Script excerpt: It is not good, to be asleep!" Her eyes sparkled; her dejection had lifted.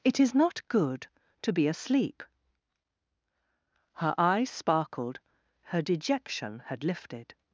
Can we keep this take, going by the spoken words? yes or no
yes